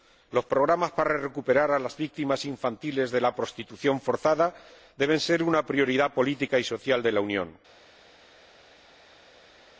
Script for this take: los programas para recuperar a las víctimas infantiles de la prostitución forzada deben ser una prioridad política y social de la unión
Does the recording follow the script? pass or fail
pass